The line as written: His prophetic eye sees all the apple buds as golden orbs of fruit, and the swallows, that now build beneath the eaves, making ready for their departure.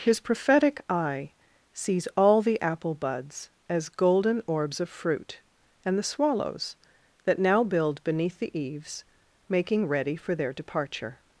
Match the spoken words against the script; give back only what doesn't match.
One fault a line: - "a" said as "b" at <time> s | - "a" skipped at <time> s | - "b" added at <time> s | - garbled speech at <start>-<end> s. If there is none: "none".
none